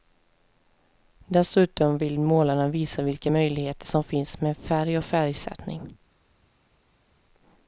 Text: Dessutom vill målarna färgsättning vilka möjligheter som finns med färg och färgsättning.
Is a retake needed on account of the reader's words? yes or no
yes